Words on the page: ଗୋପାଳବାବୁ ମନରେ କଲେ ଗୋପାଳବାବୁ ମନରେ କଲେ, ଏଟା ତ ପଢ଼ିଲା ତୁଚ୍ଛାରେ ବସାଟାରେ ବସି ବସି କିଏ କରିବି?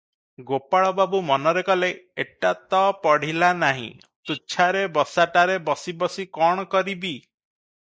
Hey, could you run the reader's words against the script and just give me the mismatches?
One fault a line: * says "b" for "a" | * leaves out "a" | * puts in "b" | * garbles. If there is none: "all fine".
* leaves out "ଗୋପାଳବାବୁ ମନରେ କଲେ"
* puts in "ନାହିଁ"
* says "କଣ" for "କିଏ"